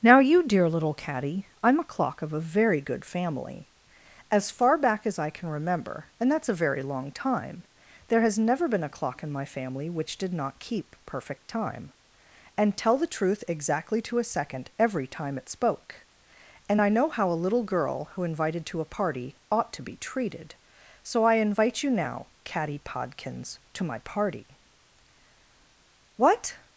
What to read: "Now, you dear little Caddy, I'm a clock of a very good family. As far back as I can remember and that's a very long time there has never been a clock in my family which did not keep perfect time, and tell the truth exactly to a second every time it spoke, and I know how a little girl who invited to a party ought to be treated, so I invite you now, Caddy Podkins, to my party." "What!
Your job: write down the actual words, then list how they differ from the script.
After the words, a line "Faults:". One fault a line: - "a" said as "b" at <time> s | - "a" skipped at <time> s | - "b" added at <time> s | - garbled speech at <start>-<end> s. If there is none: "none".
"Now, you dear little Caddy, I'm a clock of a very good family. As far back as I can remember and that's a very long time there has never been a clock in my family which did not keep perfect time, and tell the truth exactly to a second every time it spoke, and I know how a little girl who invited to a party ought to be treated, so I invite you now, Caddy Podkins, to my party." "What!
Faults:
none